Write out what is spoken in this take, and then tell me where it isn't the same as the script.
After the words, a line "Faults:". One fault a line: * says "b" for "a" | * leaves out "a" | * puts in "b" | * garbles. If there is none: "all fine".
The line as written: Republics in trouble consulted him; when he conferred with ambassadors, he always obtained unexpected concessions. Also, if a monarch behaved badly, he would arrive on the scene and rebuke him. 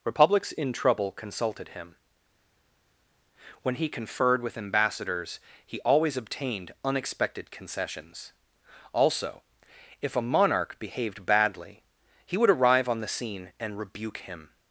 Republics in trouble consulted him; when he conferred with ambassadors, he always obtained unexpected concessions. Also, if a monarch behaved badly, he would arrive on the scene and rebuke him.
Faults:
all fine